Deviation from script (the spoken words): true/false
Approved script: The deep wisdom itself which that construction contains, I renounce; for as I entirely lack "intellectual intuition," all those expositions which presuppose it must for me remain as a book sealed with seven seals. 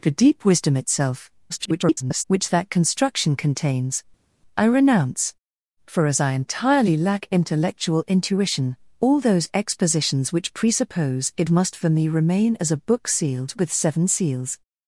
true